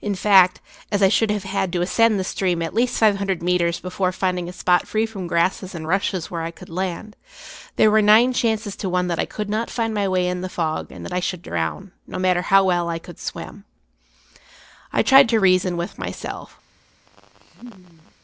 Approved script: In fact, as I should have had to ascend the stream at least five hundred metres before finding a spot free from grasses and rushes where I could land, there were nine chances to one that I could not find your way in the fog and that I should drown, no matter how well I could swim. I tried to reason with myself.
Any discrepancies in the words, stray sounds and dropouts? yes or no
yes